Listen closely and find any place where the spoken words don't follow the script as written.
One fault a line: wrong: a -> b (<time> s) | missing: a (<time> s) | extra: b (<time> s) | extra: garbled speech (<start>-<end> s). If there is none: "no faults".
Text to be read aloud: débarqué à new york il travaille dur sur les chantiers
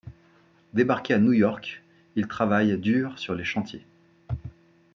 no faults